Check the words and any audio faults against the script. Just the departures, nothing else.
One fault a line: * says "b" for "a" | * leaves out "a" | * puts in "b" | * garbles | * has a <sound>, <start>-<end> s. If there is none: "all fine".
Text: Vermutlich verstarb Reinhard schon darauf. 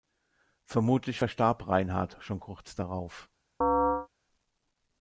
* puts in "kurz"
* has a chirp, 3.6-4.1 s